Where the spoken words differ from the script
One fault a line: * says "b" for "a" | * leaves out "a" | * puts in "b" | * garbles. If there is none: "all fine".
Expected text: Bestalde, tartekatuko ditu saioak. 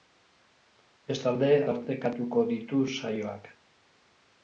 all fine